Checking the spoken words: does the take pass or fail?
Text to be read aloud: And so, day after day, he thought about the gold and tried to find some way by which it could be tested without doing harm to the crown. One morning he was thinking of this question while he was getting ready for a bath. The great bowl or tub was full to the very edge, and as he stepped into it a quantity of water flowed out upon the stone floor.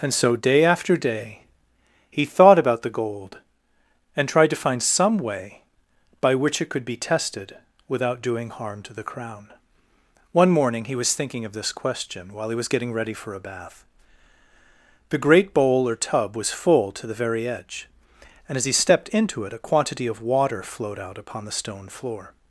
pass